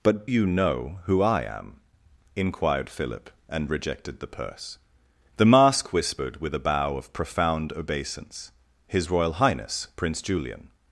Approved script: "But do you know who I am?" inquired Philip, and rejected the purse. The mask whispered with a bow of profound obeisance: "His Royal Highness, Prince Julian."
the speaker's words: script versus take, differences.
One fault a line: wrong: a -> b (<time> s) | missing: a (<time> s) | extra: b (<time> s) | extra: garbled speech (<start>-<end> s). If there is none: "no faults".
missing: do (0.3 s)